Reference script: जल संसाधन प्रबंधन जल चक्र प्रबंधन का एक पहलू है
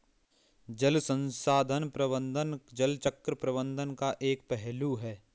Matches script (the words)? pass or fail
pass